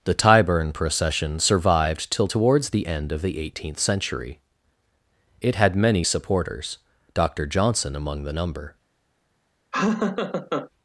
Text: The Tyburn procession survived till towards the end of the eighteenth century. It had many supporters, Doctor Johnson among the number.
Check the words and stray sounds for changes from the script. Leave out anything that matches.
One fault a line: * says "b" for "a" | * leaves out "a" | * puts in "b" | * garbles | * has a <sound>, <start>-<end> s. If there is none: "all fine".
* has a laugh, 9.7-10.7 s